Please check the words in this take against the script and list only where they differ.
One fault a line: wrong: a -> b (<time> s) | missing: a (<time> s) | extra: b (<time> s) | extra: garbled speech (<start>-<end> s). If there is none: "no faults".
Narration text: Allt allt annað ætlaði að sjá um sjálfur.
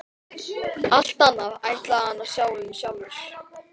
missing: allt (1.2 s)
extra: hann (2.1 s)